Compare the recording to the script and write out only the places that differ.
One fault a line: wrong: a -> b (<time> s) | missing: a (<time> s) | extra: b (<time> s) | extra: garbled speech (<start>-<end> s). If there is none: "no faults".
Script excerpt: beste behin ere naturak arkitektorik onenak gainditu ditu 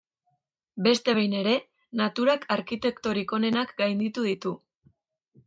no faults